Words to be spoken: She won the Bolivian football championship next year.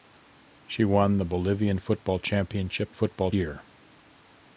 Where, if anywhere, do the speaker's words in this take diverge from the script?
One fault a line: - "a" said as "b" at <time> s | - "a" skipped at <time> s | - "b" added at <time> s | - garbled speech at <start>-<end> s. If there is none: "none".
- "next" said as "football" at 2.9 s